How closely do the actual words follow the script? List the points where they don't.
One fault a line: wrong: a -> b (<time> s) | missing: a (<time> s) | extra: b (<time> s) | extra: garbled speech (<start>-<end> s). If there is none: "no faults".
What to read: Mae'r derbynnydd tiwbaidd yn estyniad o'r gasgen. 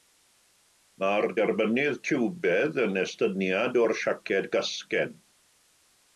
extra: siaced (4.0 s)